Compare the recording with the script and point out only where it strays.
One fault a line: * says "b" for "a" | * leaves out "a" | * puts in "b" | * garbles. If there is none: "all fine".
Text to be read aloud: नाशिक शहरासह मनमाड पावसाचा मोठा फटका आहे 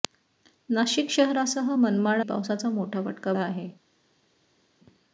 all fine